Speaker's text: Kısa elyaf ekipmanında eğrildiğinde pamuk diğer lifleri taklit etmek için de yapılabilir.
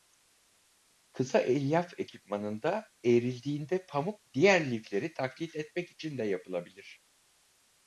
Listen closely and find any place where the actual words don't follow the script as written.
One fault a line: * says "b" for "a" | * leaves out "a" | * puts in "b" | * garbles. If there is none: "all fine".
all fine